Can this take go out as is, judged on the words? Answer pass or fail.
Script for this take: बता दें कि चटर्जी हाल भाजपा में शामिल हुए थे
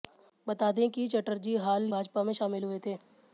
pass